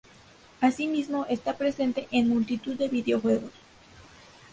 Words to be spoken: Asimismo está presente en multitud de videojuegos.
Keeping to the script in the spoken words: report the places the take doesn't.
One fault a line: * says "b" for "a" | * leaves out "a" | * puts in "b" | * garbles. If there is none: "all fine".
all fine